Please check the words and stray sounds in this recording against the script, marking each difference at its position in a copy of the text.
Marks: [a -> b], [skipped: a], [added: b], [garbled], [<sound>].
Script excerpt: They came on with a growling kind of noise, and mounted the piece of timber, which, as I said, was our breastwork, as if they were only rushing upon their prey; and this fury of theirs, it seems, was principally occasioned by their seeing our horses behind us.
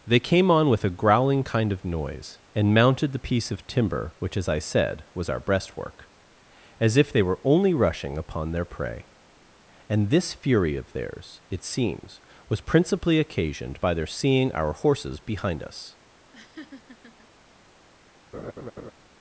They came on with a growling kind of noise, and mounted the piece of timber, which, as I said, was our breastwork, as if they were only rushing upon their prey; and this fury of theirs, it seems, was principally occasioned by their seeing our horses behind us. [laugh] [laugh]